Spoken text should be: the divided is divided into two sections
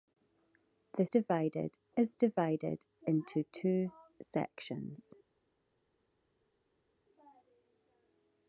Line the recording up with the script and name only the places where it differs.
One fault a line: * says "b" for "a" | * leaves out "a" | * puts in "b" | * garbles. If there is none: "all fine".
all fine